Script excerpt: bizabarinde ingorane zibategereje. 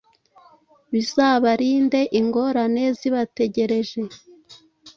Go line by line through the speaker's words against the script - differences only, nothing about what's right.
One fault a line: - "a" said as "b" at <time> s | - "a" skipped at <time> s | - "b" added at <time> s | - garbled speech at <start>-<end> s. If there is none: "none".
none